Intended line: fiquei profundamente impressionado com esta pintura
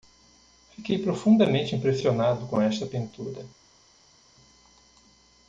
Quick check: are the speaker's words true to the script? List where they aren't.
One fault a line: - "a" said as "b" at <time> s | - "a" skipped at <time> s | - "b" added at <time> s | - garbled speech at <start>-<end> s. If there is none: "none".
none